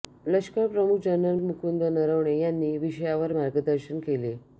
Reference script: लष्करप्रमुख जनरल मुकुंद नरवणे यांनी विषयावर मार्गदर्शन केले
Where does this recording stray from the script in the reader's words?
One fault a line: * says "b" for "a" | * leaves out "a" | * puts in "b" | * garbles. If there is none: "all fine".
all fine